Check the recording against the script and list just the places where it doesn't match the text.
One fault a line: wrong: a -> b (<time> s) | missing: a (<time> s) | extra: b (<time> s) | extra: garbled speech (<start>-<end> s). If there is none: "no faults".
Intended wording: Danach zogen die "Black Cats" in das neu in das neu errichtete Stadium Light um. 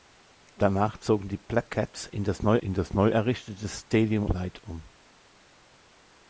no faults